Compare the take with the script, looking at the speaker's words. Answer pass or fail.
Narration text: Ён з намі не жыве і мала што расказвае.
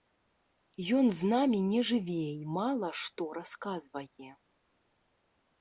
pass